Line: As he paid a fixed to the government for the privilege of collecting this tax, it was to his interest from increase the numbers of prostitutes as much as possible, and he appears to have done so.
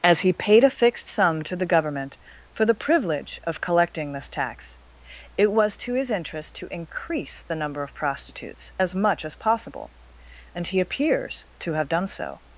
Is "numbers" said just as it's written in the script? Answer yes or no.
no